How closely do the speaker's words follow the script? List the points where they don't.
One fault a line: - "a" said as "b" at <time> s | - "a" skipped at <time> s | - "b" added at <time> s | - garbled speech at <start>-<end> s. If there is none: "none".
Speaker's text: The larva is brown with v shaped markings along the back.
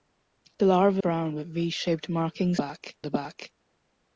- "is" skipped at 1.0 s
- "along" said as "back" at 2.6 s